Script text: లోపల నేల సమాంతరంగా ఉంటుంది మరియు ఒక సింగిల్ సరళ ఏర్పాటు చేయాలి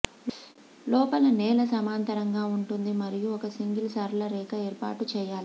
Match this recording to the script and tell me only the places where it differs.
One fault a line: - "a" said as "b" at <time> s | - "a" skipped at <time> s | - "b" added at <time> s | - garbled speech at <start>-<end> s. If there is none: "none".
- "రేఖ" added at 4.3 s